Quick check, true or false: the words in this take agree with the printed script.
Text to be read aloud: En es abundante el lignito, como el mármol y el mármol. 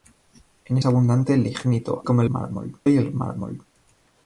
true